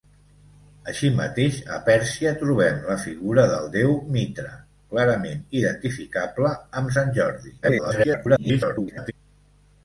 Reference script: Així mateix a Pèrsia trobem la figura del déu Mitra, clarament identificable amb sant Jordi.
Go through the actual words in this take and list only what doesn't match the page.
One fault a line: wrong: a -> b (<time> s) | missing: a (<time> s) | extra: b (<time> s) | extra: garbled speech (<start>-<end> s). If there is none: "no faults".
extra: garbled speech (7.6-9.1 s)